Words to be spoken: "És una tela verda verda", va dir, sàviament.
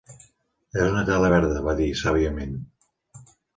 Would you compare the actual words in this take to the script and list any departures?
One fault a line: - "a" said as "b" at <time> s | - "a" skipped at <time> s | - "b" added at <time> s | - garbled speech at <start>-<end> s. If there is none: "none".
- "verda" skipped at 1.6 s